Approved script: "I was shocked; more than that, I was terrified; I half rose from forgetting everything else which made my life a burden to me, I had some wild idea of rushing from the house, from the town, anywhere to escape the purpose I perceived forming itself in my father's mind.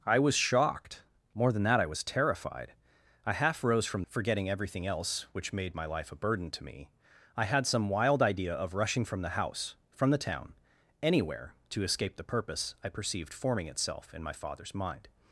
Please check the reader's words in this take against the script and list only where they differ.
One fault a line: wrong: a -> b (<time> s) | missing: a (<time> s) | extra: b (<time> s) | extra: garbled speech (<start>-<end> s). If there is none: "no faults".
no faults